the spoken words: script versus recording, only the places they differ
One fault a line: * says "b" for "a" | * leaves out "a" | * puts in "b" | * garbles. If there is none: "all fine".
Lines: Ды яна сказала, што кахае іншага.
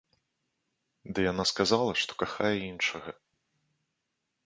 all fine